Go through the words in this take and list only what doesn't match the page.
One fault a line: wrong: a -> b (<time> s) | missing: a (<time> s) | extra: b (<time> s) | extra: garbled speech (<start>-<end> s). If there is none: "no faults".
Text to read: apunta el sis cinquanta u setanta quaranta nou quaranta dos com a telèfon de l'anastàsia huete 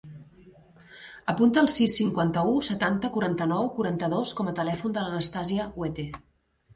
no faults